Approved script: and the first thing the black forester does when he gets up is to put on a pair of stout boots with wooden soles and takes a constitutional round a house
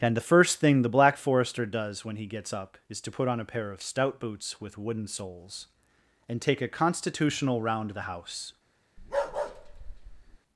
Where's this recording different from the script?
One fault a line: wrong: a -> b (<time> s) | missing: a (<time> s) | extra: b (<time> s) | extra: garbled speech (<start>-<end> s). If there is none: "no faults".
wrong: takes -> take (6.4 s)
wrong: a -> the (7.9 s)